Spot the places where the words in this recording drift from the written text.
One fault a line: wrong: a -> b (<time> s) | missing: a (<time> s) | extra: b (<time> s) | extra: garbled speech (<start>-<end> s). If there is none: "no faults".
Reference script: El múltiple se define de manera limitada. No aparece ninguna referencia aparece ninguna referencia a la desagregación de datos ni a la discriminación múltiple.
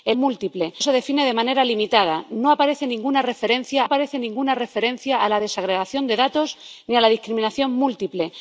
no faults